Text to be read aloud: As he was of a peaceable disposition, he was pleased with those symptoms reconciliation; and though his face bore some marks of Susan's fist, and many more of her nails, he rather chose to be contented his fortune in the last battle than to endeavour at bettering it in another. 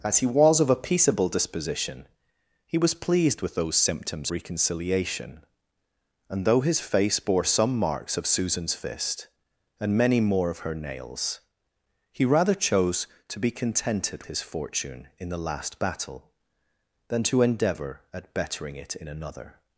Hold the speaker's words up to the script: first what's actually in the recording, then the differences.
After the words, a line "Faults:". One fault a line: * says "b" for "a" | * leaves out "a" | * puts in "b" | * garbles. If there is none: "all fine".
As he was of a peaceable disposition, he was pleased with those symptoms reconciliation; and though his face bore some marks of Susan's fist, and many more of her nails, he rather chose to be contented his fortune in the last battle than to endeavour at bettering it in another.
Faults:
all fine